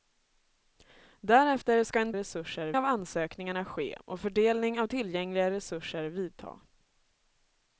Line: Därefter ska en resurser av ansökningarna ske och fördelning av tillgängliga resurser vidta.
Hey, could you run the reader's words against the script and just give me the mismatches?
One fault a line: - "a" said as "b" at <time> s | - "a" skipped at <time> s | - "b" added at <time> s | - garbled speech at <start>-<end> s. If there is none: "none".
none